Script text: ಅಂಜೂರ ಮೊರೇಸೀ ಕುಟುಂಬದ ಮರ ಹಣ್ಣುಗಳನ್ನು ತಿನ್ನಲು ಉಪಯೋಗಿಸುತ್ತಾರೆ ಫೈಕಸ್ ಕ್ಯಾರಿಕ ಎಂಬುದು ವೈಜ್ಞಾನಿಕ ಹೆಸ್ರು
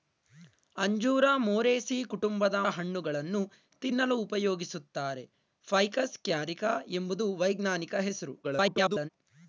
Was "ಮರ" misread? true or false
true